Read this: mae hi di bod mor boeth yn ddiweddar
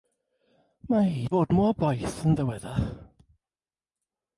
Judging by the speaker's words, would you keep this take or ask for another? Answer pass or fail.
fail